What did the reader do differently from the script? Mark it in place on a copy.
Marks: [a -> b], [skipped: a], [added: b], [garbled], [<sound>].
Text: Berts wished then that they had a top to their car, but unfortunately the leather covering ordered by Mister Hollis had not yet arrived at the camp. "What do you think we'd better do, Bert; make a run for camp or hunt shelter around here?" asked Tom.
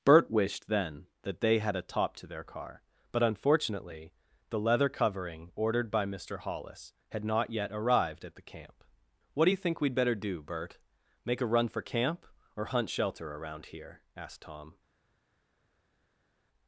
[Berts -> Bert] wished then that they had a top to their car, but unfortunately the leather covering ordered by Mister Hollis had not yet arrived at the camp. "What do you think we'd better do, Bert; make a run for camp or hunt shelter around here?" asked Tom.